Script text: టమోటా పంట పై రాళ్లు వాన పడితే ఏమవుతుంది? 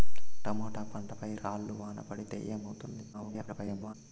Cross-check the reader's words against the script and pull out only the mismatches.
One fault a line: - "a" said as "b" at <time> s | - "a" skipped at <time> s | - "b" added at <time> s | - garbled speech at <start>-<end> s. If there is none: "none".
- garbled speech at 3.1-3.9 s